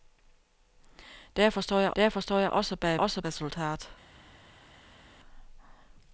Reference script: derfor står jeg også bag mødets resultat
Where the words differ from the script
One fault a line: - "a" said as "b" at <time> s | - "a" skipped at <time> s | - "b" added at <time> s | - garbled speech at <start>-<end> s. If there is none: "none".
- "derfor står jeg" added at 1.9 s
- "mødets" said as "også" at 2.9 s